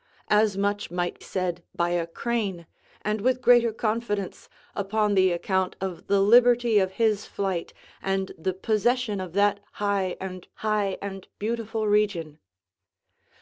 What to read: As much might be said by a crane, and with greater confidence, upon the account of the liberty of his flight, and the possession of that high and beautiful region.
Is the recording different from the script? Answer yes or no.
yes